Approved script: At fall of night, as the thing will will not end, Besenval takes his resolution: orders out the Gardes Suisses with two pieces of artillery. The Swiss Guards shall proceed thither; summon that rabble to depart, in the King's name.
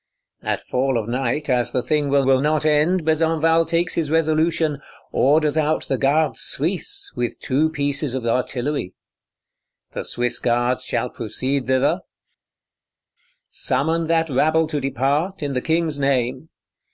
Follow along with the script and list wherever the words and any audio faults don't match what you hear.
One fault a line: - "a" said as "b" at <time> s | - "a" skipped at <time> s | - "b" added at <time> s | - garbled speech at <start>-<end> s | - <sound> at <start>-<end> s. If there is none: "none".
none